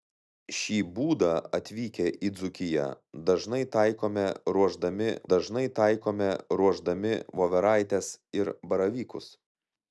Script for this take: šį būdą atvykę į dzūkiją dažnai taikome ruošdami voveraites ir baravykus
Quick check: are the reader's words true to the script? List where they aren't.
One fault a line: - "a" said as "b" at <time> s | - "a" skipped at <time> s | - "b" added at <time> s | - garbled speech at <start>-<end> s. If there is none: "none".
- "dažnai taikome ruošdami" added at 5.3 s